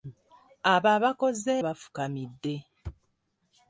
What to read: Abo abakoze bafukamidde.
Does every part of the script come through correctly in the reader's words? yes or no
yes